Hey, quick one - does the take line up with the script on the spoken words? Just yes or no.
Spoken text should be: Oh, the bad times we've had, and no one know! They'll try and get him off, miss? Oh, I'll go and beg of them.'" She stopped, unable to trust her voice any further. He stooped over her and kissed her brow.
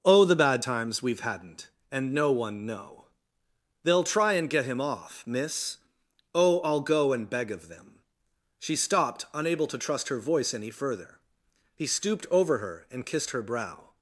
no